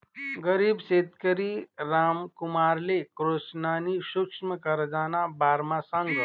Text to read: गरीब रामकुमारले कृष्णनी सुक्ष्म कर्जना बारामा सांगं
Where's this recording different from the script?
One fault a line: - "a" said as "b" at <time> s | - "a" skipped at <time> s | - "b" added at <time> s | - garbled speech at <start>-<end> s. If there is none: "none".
- "शेतकरी" added at 0.8 s